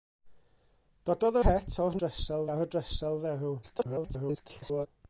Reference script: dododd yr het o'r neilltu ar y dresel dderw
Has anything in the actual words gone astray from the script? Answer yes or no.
yes